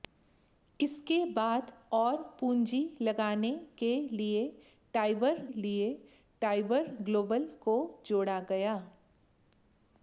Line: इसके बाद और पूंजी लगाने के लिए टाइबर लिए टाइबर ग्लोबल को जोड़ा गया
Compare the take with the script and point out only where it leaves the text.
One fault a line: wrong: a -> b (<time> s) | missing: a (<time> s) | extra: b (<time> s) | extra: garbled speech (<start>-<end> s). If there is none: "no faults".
no faults